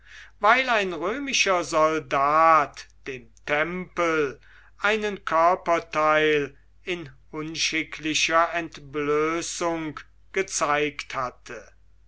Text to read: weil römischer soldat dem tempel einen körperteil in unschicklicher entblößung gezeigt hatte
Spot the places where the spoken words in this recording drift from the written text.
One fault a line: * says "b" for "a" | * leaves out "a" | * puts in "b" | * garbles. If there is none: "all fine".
* puts in "ein"